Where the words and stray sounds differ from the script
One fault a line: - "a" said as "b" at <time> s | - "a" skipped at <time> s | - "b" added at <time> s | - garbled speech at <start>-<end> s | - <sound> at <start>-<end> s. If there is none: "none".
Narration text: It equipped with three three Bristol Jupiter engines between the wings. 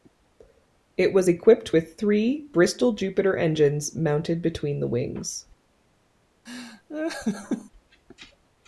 - "was" added at 1.1 s
- "three" skipped at 2.5 s
- "mounted" added at 4.0 s
- laugh at 6.5-7.7 s